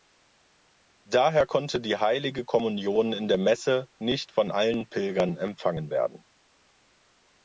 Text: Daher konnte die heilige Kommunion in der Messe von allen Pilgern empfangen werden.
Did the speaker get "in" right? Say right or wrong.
right